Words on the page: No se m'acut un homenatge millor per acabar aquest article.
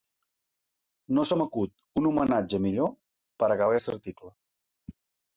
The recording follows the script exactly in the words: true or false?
true